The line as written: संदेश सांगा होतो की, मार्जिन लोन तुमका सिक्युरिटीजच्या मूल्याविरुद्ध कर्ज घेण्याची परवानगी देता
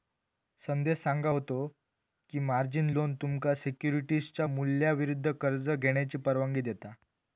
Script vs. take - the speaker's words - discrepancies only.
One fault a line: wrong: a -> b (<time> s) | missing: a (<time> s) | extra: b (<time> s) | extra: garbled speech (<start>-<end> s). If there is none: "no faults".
no faults